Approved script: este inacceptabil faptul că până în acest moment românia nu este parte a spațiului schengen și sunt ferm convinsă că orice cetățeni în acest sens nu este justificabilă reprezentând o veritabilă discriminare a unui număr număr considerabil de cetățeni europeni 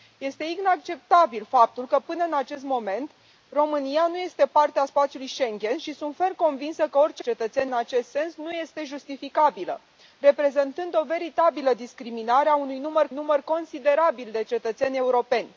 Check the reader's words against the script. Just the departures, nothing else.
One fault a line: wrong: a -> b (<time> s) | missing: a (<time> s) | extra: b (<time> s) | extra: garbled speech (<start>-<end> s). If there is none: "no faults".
no faults